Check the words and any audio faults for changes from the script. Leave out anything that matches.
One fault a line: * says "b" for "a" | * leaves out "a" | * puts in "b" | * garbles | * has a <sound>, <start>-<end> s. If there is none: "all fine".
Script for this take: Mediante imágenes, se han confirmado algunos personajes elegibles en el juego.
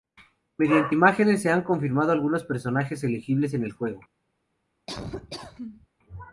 * has a laugh, 4.9-5.9 s